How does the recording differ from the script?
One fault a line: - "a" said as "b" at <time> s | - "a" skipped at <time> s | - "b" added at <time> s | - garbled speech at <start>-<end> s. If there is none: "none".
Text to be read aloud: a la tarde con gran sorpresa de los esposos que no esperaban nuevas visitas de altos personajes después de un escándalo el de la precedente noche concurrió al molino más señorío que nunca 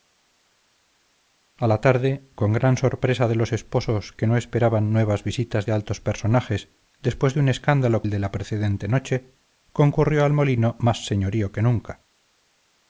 none